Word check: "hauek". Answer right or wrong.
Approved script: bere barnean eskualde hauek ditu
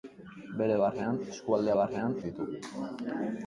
wrong